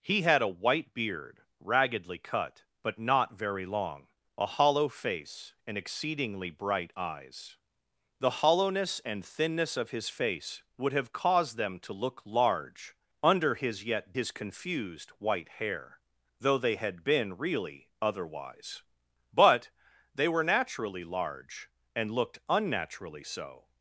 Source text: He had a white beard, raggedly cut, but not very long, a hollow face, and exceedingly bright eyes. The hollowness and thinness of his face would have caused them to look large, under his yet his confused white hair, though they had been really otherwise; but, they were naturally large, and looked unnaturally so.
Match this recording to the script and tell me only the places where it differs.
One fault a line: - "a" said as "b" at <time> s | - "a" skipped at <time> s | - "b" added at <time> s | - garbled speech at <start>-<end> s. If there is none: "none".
none